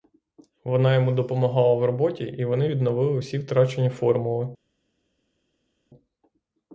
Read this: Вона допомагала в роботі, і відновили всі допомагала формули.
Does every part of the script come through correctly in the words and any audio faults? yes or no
no